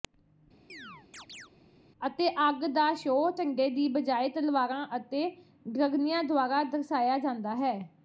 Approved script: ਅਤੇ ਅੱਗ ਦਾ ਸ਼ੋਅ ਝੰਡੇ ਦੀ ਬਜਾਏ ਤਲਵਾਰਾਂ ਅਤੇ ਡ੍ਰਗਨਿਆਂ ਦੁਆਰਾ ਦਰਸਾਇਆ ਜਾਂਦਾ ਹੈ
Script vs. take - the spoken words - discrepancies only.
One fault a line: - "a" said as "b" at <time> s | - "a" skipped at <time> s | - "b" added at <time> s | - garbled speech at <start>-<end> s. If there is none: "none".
none